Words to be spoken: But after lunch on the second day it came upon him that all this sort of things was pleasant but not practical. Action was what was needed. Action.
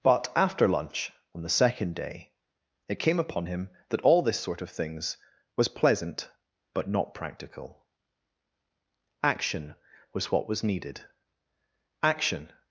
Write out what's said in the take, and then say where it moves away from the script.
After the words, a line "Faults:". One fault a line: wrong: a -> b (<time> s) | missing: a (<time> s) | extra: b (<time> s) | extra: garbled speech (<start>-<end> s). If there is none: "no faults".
But after lunch on the second day it came upon him that all this sort of things was pleasant but not practical. Action was what was needed. Action.
Faults:
no faults